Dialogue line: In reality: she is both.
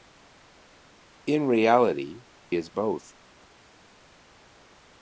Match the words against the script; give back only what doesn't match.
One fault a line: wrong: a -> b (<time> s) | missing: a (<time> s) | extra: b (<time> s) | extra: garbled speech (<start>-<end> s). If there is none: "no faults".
missing: she (2.2 s)